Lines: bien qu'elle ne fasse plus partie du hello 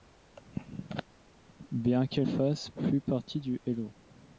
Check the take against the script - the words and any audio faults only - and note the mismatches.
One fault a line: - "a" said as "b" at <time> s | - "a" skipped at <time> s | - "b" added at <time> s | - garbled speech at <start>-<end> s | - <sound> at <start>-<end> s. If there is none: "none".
- "ne" skipped at 2.3 s